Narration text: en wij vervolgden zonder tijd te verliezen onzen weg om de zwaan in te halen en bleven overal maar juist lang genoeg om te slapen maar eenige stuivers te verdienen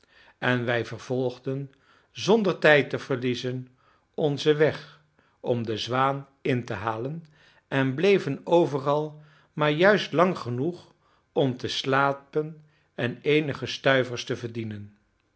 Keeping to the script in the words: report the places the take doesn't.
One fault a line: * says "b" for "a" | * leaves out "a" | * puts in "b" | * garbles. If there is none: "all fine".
* says "en" for "maar"